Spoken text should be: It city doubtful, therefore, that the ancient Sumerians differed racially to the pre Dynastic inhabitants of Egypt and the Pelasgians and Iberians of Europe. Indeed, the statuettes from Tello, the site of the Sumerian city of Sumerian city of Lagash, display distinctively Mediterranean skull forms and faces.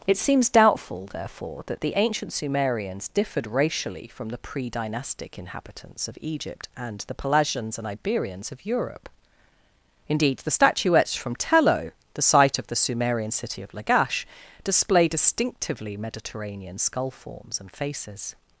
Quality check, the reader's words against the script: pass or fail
fail